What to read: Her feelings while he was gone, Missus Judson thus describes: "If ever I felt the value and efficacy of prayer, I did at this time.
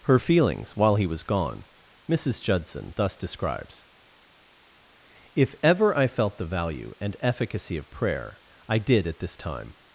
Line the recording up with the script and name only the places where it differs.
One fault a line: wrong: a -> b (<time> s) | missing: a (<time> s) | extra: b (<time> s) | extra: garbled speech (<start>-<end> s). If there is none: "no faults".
no faults